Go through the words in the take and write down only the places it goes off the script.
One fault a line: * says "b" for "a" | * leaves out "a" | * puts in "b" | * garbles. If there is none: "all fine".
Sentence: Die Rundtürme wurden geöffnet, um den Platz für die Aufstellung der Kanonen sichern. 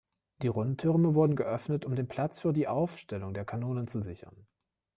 * puts in "zu"